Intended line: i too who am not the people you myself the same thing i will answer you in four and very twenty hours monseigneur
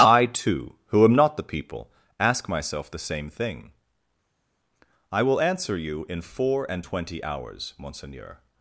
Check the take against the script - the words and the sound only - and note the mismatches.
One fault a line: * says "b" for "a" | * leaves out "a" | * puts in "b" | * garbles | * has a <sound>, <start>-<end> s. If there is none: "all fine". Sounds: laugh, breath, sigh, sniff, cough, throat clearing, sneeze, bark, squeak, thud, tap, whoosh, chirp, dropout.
* says "ask" for "you"
* leaves out "very"